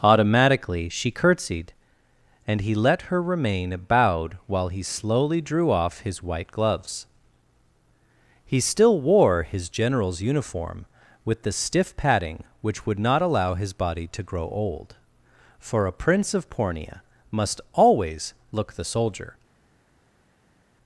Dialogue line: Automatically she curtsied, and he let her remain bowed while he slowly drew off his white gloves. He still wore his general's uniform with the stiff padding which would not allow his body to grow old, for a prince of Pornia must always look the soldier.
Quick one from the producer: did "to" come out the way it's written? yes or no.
yes